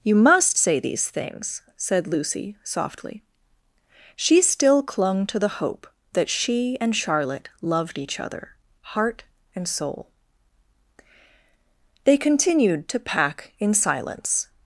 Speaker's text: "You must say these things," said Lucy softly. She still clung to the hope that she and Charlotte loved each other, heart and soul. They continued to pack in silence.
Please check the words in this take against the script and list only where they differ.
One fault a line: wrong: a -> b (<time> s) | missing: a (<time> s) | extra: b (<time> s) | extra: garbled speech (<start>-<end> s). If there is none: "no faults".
no faults